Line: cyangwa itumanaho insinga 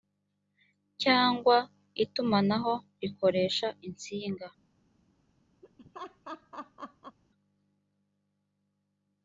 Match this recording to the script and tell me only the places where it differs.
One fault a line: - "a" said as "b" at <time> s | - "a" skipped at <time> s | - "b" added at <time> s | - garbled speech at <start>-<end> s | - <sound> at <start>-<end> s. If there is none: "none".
- "rikoresha" added at 3.0 s
- laugh at 5.6-7.2 s